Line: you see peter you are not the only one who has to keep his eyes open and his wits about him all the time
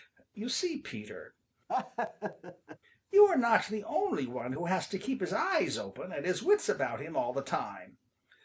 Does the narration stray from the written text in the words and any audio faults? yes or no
yes